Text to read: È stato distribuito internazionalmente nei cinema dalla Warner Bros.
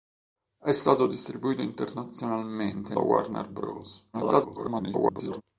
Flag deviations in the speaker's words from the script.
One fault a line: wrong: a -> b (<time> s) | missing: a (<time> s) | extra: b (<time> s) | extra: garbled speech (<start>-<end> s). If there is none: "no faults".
missing: nei cinema dalla (3.0 s)
extra: garbled speech (4.1-5.4 s)